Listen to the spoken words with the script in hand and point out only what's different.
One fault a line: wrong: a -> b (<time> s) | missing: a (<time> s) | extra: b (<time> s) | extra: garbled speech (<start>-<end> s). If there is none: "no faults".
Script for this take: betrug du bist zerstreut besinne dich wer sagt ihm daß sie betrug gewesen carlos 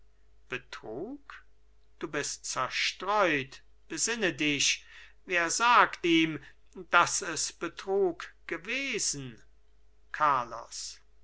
wrong: sie -> es (7.2 s)